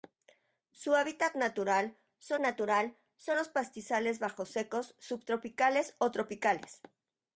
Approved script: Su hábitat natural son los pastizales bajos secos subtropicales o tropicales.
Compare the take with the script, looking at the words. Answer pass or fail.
fail